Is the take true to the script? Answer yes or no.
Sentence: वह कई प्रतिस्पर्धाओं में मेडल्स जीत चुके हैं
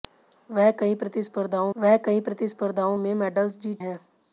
no